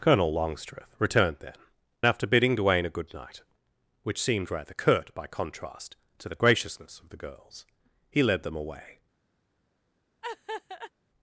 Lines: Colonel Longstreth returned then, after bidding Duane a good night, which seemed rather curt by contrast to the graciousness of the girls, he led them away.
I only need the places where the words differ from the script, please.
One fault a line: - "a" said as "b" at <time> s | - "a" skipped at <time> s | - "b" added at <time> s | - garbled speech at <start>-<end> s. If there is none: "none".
none